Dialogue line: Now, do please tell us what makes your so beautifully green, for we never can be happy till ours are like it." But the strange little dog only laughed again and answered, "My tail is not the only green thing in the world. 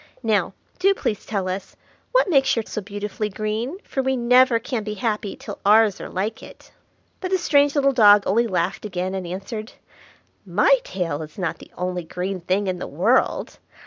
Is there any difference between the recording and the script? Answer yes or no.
no